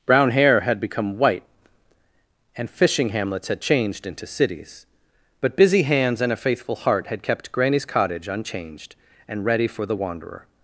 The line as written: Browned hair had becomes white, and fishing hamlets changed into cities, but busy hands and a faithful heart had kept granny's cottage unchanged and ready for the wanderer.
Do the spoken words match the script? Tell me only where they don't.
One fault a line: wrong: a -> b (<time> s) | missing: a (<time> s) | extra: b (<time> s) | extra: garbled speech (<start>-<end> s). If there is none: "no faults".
wrong: Browned -> Brown (0.1 s)
wrong: becomes -> become (0.8 s)
extra: had (3.5 s)